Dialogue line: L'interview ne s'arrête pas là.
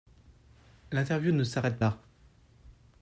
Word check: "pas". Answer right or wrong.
wrong